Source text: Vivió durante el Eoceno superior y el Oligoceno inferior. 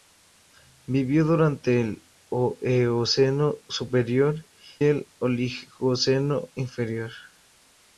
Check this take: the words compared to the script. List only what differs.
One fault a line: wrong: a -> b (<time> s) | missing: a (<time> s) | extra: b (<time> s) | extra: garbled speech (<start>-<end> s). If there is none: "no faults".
missing: y (4.5 s)